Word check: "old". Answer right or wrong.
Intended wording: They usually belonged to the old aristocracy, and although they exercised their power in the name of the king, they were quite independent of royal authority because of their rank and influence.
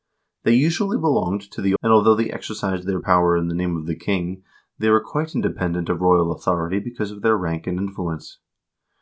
wrong